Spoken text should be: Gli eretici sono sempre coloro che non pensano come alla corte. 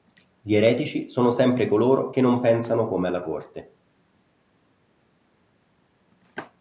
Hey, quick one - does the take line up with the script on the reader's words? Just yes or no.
yes